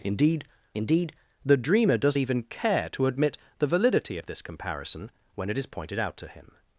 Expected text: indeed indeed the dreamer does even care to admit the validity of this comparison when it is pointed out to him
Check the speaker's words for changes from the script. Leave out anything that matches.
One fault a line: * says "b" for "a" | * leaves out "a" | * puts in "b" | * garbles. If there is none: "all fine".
all fine